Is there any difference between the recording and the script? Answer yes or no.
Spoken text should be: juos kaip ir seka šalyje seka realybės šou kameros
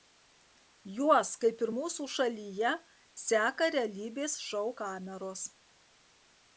yes